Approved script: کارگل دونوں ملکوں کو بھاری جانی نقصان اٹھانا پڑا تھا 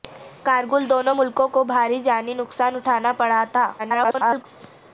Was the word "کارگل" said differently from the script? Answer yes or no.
no